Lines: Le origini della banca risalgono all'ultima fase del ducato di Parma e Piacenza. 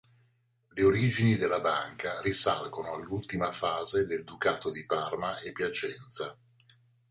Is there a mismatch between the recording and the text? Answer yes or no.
no